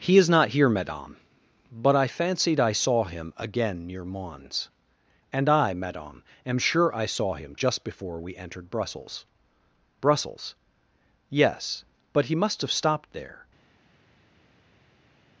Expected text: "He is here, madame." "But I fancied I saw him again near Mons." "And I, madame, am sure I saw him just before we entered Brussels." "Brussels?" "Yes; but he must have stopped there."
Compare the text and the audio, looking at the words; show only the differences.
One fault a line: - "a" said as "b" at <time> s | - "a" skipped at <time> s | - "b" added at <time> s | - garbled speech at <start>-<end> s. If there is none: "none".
- "not" added at 0.3 s